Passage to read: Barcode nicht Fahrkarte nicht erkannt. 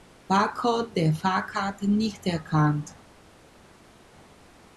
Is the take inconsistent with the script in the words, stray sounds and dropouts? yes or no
yes